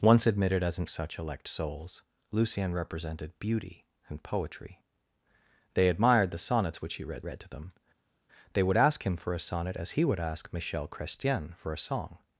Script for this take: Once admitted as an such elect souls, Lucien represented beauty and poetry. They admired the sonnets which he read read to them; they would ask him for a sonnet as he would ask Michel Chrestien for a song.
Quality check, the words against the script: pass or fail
pass